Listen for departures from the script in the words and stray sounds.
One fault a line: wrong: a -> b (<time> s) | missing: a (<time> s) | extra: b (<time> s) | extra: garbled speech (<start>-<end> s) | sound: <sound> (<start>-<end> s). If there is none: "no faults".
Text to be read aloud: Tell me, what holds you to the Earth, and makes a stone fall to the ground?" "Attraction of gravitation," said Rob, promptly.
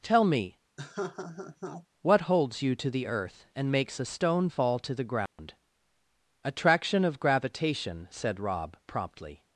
sound: laugh (0.8-1.9 s)
sound: dropout (5.3-5.4 s)